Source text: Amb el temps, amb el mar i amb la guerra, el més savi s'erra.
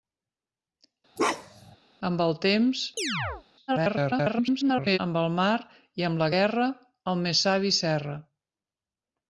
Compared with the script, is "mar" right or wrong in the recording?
right